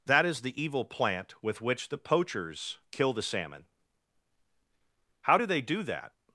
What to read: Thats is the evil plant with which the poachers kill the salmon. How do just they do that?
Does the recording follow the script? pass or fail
fail